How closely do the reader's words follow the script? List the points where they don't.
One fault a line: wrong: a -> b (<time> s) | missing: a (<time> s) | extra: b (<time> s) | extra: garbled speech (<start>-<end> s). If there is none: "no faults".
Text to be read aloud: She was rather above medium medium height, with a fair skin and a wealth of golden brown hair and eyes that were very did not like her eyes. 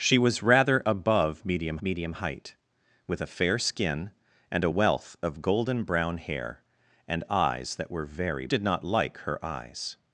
no faults